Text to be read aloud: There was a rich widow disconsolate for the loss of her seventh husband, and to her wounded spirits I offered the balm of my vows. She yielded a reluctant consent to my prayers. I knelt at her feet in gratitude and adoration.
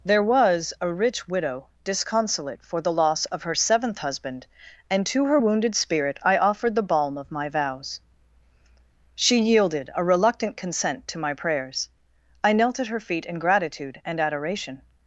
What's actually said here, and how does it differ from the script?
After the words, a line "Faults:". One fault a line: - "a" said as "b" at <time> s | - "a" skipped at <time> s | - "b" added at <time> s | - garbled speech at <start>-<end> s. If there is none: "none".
There was a rich widow disconsolate for the loss of her seventh husband, and to her wounded spirit I offered the balm of my vows. She yielded a reluctant consent to my prayers. I knelt at her feet in gratitude and adoration.
Faults:
- "spirits" said as "spirit" at 5.7 s